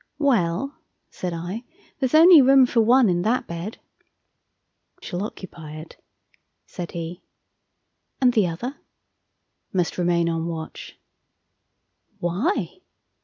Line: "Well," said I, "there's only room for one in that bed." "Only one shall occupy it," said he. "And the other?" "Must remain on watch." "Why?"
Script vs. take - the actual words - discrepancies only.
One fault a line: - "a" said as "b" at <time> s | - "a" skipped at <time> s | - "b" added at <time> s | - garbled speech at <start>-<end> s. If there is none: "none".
- "Only one" skipped at 3.8 s